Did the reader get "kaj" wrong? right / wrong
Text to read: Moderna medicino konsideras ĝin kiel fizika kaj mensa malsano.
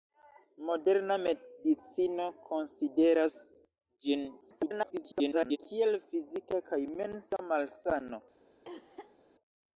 right